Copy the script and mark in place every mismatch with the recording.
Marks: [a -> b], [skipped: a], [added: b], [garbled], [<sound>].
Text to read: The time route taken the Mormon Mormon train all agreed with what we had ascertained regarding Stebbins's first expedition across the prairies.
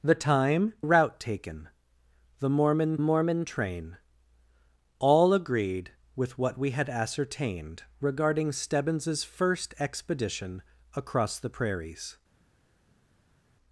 The time route taken the Mormon Mormon train all agreed with what we had ascertained regarding Stebbins's first expedition across the prairies.